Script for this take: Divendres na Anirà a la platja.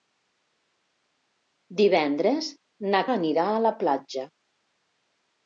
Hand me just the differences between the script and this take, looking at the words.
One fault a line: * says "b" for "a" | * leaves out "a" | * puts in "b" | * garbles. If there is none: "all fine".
all fine